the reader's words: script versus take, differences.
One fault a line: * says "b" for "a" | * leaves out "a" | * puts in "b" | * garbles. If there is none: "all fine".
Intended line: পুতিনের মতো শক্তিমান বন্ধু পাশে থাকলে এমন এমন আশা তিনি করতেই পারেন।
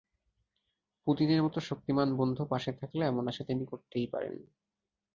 * leaves out "এমন"